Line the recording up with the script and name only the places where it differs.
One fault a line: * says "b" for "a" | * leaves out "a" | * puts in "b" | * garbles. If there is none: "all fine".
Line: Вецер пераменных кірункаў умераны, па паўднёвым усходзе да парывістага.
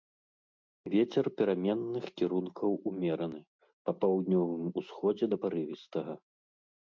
all fine